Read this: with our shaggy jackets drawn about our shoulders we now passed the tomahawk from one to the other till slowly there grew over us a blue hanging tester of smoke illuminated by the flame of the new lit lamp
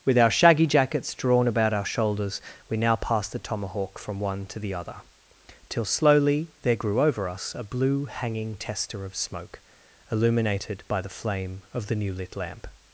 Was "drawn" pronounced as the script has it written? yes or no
yes